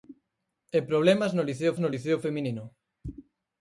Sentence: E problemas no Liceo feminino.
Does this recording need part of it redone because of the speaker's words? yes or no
yes